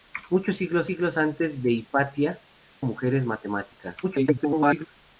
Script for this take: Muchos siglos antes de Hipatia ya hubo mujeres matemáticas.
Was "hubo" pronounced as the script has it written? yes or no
no